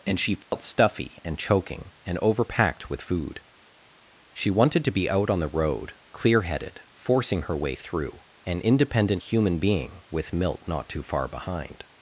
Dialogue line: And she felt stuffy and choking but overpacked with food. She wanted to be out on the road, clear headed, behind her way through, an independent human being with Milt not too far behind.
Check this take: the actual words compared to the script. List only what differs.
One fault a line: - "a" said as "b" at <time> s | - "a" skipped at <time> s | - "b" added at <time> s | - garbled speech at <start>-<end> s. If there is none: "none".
- "but" said as "and" at 2.0 s
- "behind" said as "forcing" at 6.9 s